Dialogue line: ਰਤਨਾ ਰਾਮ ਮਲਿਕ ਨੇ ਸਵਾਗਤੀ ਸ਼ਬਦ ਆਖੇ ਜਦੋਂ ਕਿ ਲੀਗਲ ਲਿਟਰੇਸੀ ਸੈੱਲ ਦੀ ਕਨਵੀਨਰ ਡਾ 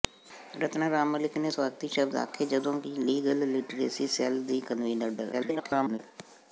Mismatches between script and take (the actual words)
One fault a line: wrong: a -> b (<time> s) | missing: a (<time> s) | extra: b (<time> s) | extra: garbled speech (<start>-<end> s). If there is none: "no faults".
extra: garbled speech (5.3-6.0 s)